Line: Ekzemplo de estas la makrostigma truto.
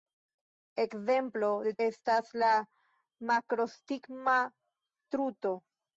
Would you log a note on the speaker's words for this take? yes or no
no